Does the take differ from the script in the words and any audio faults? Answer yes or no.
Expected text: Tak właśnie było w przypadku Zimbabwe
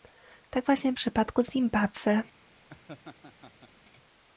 yes